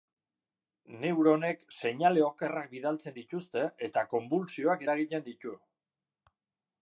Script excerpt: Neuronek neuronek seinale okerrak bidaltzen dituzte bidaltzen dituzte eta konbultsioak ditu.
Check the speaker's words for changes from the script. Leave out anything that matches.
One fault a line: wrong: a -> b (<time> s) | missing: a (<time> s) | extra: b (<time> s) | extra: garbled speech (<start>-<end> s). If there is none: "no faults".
missing: neuronek (1.6 s)
missing: bidaltzen dituzte (3.7 s)
extra: eragiten (4.9 s)